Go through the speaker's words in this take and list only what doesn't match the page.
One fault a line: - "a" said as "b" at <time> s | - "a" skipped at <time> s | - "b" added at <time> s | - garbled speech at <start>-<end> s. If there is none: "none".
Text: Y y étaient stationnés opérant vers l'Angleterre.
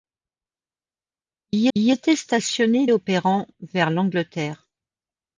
none